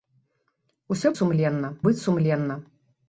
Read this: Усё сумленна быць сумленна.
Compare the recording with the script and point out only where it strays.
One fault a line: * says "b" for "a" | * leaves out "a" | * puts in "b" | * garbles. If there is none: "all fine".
all fine